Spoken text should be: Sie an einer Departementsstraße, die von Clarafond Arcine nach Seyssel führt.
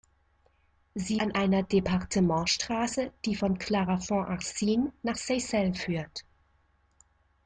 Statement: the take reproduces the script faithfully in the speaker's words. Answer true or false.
true